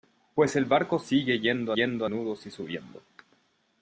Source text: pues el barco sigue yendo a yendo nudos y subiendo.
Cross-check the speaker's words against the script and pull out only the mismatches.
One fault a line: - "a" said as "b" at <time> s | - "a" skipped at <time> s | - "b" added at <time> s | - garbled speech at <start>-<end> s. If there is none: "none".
none